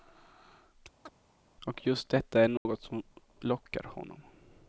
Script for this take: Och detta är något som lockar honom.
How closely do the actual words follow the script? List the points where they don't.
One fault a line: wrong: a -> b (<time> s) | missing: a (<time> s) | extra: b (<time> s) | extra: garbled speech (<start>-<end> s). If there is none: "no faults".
extra: just (1.9 s)